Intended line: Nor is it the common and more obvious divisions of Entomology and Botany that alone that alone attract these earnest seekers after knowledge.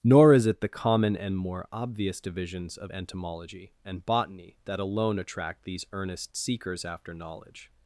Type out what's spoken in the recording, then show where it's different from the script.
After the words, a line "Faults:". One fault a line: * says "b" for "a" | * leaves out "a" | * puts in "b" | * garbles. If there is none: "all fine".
Nor is it the common and more obvious divisions of Entomology and Botany that alone attract these earnest seekers after knowledge.
Faults:
* leaves out "that alone"